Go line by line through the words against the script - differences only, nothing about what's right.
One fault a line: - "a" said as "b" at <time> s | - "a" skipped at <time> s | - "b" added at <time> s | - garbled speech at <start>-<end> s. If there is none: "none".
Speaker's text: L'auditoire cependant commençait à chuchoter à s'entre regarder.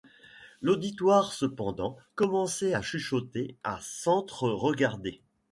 none